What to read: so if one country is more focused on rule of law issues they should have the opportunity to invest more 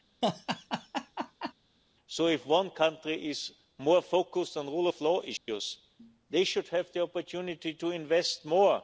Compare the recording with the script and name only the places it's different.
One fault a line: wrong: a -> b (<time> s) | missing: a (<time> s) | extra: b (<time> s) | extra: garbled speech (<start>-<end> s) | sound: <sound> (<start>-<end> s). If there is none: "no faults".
sound: laugh (0.2-1.5 s)
sound: dropout (5.4-5.5 s)